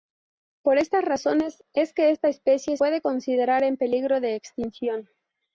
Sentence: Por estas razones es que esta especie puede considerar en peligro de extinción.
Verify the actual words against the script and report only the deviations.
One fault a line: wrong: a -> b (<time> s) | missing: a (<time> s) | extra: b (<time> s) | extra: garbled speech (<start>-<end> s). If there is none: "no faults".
no faults